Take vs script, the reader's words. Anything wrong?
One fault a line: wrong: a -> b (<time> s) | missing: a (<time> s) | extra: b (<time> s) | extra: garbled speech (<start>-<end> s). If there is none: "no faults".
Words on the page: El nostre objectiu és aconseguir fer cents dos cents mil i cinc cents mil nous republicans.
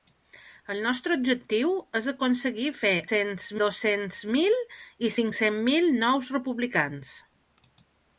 no faults